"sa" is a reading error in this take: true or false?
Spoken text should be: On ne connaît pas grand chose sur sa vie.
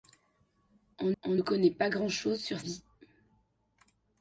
true